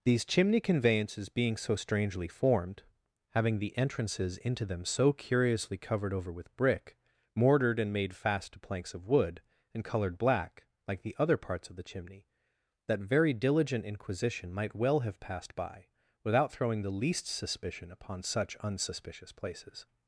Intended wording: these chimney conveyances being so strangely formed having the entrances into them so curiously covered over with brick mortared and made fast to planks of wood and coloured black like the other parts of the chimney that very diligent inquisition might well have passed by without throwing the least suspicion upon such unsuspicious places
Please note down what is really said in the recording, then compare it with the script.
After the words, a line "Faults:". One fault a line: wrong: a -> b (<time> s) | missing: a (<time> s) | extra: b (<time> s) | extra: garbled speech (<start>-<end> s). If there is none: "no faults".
these chimney conveyances being so strangely formed having the entrances into them so curiously covered over with brick mortared and made fast to planks of wood and coloured black like the other parts of the chimney that very diligent inquisition might well have passed by without throwing the least suspicion upon such unsuspicious places
Faults:
no faults